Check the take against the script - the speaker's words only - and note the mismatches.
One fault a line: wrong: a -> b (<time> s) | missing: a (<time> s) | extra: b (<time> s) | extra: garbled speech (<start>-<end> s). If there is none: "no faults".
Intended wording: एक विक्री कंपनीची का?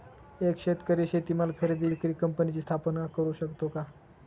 extra: शेतकरी शेतीमाल खरेदी (0.6 s)
extra: स्थापना करु शकतो (2.6 s)